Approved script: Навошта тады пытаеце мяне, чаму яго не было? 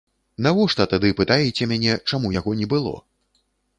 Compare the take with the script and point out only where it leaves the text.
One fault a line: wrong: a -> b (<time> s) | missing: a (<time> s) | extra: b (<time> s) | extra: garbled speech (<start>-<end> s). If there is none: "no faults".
no faults